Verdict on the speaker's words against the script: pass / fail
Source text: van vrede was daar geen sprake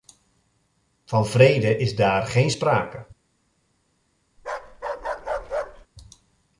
fail